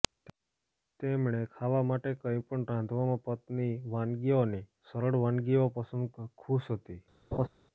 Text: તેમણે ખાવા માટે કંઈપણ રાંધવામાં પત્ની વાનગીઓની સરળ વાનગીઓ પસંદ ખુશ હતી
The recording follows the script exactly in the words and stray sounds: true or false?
false